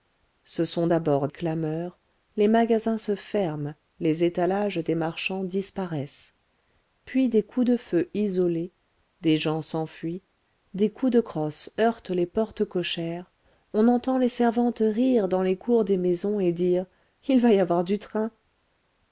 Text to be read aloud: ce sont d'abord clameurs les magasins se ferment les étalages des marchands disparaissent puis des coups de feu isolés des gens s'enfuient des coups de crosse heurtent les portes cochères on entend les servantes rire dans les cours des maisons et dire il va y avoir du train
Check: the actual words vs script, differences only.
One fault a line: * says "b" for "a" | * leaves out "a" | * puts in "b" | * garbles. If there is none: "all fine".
all fine